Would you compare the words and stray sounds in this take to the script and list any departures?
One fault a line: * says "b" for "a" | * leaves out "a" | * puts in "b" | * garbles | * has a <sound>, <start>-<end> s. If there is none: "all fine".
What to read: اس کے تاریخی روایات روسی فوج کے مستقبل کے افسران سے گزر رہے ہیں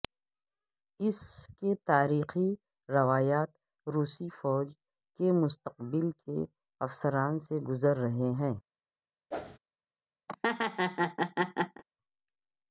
* has a whoosh, 9.3-9.6 s
* has a laugh, 10.3-11.8 s